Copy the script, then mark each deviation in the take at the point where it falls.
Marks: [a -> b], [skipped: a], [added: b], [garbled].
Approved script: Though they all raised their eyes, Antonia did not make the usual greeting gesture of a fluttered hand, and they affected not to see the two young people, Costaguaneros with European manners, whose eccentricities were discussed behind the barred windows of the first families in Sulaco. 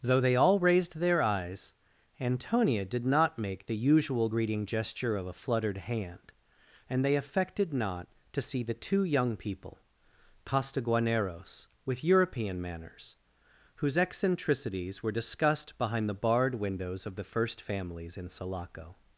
Though they all raised their eyes, Antonia did not make the usual greeting gesture of a fluttered hand, and they affected not to see the two young people, Costaguaneros with European manners, whose eccentricities were discussed behind the barred windows of the first families in Sulaco.